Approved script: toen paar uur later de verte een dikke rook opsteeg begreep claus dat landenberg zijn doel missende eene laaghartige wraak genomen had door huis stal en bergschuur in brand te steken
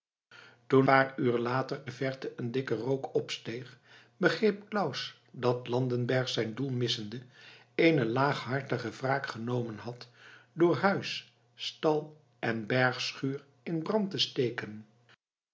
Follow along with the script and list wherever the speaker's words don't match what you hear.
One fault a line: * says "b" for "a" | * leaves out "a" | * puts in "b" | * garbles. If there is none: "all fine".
all fine